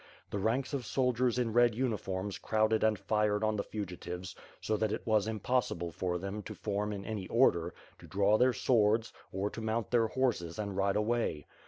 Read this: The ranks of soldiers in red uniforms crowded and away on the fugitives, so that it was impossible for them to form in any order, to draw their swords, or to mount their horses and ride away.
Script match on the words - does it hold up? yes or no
no